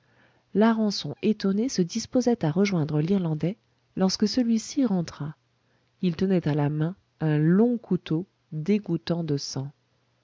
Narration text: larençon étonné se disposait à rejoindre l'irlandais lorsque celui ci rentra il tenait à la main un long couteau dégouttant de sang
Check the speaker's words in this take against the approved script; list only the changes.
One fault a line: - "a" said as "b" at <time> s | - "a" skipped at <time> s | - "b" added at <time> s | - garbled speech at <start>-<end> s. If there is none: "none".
none